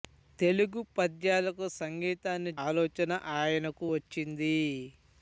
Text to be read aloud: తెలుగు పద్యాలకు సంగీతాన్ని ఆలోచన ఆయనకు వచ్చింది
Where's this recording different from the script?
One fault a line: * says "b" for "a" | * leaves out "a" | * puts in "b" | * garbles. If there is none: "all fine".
all fine